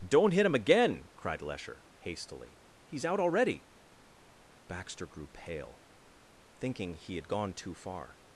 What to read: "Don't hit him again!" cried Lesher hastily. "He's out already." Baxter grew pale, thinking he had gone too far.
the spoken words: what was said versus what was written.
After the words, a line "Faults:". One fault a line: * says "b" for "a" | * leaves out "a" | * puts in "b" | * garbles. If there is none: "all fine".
"Don't hit him again!" cried Lesher hastily. "He's out already." Baxter grew pale, thinking he had gone too far.
Faults:
all fine